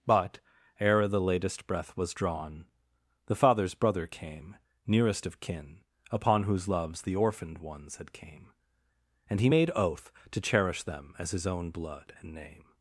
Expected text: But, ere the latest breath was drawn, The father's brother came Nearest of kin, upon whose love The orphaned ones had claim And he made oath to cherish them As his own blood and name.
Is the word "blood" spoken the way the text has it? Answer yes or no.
yes